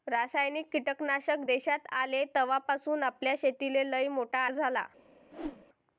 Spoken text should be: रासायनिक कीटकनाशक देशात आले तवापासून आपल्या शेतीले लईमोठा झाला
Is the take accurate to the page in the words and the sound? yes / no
no